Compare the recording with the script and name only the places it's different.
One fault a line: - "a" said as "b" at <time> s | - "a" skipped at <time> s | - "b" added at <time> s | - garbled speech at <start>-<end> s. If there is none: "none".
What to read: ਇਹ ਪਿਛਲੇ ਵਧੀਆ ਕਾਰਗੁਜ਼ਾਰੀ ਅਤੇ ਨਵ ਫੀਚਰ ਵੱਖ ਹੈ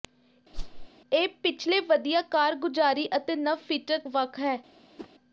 none